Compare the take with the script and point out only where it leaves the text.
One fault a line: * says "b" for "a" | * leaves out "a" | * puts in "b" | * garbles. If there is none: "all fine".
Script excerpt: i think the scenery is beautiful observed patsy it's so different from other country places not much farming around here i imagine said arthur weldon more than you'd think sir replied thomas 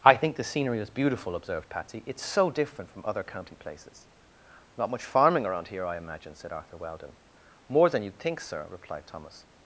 * says "county" for "country"